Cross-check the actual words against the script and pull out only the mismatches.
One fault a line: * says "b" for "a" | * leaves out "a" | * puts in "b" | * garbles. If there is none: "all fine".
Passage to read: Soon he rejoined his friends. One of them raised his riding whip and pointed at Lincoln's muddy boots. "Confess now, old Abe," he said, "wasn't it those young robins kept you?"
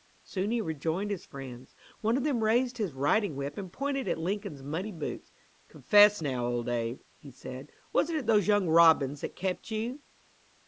* puts in "that"